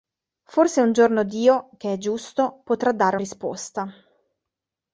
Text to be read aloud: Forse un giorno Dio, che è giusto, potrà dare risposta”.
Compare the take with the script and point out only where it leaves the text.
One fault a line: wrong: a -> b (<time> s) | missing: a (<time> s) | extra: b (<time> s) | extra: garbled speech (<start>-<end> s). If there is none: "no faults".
no faults